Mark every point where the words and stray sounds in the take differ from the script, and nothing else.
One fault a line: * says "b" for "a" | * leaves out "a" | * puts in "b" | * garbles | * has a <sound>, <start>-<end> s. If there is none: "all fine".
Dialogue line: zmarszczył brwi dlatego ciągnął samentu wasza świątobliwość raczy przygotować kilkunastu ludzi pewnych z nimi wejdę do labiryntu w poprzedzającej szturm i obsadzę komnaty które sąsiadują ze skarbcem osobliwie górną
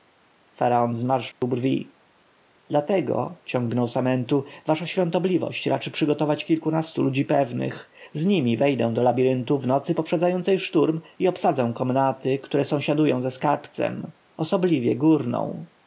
* has a dropout, 1.3-1.4 s
* puts in "nocy"